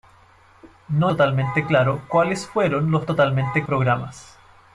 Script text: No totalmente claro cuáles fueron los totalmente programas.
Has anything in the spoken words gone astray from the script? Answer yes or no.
no